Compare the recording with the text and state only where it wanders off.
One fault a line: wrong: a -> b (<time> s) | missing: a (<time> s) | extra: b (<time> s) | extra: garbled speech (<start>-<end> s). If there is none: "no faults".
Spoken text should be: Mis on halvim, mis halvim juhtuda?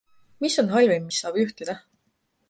wrong: halvim -> saab (1.2 s)